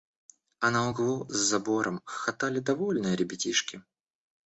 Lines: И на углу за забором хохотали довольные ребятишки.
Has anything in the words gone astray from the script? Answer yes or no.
yes